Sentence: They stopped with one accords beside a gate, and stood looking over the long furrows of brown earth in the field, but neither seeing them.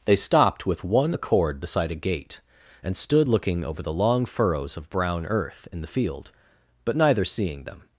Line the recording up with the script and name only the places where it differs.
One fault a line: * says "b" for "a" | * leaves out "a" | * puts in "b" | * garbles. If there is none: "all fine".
* says "accord" for "accords"